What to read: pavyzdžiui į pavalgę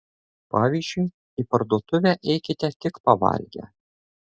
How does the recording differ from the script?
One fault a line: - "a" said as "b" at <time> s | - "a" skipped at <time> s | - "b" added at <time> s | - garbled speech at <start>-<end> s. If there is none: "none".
- "parduotuvę eikite tik" added at 1.5 s